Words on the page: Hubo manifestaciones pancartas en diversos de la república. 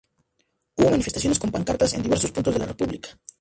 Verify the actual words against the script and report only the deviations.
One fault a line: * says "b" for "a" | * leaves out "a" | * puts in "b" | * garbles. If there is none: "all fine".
* puts in "con"
* puts in "puntos"